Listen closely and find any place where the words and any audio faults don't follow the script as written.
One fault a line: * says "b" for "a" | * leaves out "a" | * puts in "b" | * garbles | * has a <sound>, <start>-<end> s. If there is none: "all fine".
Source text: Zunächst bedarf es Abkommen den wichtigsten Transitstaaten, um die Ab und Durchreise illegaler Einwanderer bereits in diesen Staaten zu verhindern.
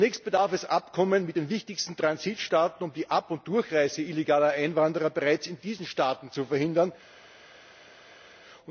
* puts in "mit"